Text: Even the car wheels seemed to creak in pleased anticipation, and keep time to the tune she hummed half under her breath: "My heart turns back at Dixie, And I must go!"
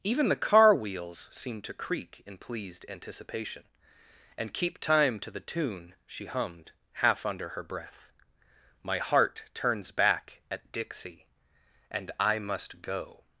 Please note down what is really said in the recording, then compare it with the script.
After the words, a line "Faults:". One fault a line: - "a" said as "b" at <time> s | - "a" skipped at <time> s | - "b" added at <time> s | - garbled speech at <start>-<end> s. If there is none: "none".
Even the car wheels seemed to creak in pleased anticipation, and keep time to the tune she hummed half under her breath: "My heart turns back at Dixie, And I must go!"
Faults:
none